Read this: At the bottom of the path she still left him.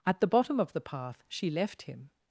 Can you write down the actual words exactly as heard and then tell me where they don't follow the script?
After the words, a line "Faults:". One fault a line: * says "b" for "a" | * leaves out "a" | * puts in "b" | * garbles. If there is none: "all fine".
At the bottom of the path she left him.
Faults:
* leaves out "still"